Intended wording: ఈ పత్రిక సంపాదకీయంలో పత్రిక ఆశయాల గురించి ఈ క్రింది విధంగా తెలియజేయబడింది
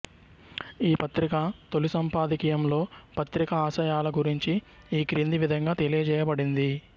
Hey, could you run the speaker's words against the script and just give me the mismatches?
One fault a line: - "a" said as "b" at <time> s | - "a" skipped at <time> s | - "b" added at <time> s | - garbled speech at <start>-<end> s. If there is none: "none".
- "తొలి" added at 1.7 s